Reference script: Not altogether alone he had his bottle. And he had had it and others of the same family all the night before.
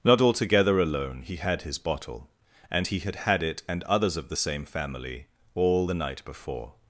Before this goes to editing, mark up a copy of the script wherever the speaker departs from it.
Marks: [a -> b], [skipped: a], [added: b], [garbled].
Not altogether alone he had his bottle. And he had had it and others of the same family all the night before.